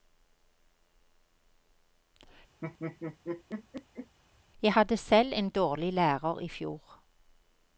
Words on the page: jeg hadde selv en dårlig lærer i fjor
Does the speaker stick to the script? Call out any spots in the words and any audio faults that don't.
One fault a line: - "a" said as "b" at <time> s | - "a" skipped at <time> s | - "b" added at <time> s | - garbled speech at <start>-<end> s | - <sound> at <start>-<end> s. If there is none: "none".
- laugh at 2.6-4.2 s